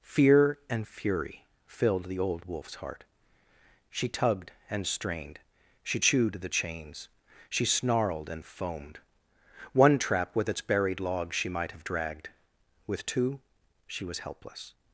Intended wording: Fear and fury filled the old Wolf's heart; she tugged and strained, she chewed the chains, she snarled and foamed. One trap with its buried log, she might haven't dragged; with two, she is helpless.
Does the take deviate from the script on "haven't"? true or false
true